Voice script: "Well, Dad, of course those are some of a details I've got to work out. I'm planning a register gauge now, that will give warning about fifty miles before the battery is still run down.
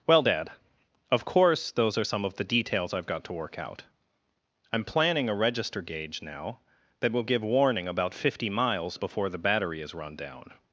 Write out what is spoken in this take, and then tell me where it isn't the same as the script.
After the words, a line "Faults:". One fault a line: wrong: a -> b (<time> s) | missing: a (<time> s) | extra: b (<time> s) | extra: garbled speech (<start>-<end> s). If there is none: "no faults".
"Well, Dad, of course those are some of the details I've got to work out. I'm planning a register gauge now, that will give warning about fifty miles before the battery is run down.
Faults:
wrong: a -> the (2.3 s)
missing: still (9.9 s)